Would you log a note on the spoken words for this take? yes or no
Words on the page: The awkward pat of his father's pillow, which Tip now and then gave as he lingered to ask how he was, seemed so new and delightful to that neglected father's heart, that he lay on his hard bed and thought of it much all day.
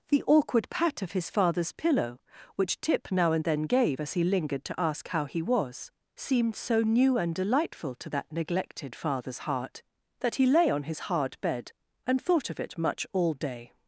no